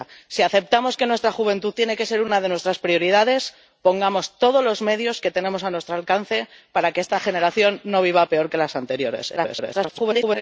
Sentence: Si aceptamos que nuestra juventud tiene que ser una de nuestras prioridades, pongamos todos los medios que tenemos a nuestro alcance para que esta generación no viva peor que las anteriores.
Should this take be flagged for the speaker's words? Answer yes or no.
yes